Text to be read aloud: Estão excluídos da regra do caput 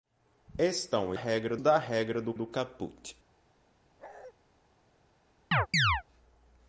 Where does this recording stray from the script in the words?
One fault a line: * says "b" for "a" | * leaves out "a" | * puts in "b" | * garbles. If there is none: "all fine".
* says "regra" for "excluídos"
* puts in "do"